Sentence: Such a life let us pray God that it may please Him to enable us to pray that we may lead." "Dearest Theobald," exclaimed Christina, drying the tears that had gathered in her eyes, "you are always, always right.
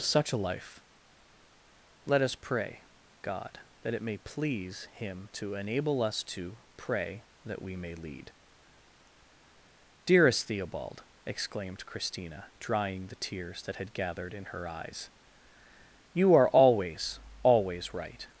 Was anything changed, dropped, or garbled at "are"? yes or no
no